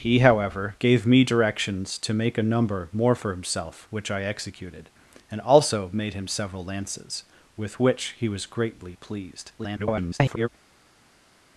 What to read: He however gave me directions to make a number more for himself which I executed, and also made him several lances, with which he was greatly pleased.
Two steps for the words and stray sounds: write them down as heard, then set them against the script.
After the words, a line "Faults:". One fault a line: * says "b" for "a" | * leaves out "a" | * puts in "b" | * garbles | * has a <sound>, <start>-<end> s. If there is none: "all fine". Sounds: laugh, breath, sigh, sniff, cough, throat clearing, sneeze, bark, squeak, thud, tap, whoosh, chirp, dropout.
He however gave me directions to make a number more for himself which I executed, and also made him several lances, with which he was greatly pleased. [garbled]
Faults:
* garbles